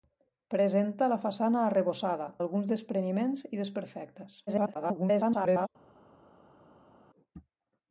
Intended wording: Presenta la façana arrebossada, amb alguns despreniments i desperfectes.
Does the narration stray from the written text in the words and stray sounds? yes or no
yes